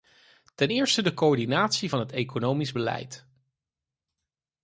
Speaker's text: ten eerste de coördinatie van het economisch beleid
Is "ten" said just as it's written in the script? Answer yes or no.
yes